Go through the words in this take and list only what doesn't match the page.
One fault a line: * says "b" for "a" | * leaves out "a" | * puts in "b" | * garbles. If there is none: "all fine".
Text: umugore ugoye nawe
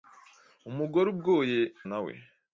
all fine